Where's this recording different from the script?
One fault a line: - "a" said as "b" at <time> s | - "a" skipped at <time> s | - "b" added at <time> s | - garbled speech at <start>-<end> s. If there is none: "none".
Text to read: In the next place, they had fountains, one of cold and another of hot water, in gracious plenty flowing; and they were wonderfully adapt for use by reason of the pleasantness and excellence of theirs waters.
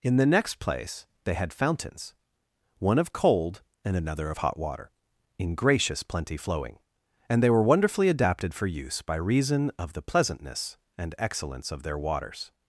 - "adapt" said as "adapted" at 8.1 s
- "theirs" said as "their" at 11.8 s